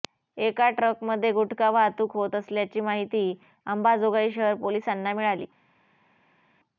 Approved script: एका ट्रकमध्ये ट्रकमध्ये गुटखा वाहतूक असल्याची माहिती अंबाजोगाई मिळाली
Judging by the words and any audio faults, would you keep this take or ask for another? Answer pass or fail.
fail